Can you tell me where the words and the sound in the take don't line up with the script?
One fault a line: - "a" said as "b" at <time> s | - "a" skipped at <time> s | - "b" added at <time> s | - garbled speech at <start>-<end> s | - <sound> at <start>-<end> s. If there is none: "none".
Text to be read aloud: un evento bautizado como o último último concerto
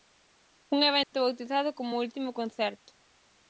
- dropout at 1.0-1.1 s
- "último" skipped at 2.3 s